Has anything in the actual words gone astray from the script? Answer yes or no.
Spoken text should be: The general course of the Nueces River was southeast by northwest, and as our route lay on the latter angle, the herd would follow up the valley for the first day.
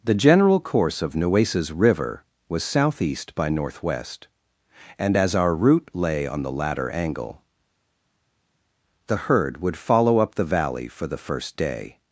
yes